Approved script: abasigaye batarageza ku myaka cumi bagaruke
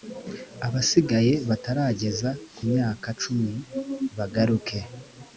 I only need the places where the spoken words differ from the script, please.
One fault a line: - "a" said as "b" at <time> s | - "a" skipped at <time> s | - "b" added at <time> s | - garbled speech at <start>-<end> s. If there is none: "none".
none